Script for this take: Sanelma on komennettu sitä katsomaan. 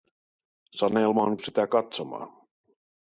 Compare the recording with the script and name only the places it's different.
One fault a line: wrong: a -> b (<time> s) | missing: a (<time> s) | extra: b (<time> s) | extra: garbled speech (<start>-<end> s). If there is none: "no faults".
missing: komennettu (1.4 s)